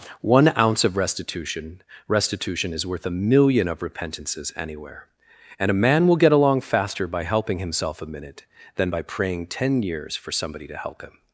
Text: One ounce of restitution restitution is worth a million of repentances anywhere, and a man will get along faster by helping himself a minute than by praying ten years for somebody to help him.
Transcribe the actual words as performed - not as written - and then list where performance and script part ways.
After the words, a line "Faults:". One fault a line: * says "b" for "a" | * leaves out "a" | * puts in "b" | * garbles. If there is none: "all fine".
One ounce of restitution restitution is worth a million of repentances anywhere, and a man will get along faster by helping himself a minute than by praying ten years for somebody to help him.
Faults:
all fine